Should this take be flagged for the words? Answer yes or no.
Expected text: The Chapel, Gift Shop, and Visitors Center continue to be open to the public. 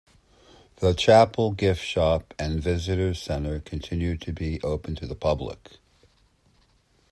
no